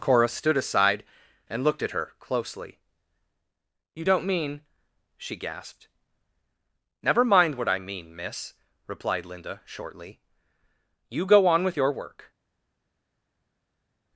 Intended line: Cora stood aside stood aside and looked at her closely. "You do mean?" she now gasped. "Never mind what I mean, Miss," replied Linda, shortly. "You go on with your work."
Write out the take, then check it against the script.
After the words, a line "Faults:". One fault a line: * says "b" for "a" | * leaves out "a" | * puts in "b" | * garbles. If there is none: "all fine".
Cora stood aside and looked at her closely. "You don't mean?" she gasped. "Never mind what I mean, Miss," replied Linda, shortly. "You go on with your work."
Faults:
* leaves out "stood aside"
* says "don't" for "do"
* leaves out "now"